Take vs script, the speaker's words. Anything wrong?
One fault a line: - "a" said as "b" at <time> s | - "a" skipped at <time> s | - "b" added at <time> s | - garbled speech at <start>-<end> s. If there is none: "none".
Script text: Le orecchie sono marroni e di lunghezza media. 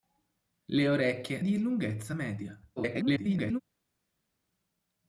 - "sono marroni e" skipped at 1.4 s
- garbled speech at 2.8-3.6 s